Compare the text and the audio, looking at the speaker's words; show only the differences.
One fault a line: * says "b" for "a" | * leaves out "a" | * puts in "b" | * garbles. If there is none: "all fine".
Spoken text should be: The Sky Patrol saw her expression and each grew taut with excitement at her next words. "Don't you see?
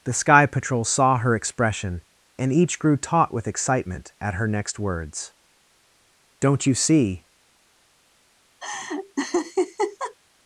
all fine